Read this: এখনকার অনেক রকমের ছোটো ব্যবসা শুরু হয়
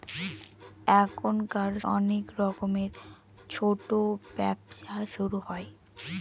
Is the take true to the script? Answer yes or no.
yes